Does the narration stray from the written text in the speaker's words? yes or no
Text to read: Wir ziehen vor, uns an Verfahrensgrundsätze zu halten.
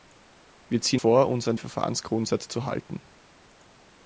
no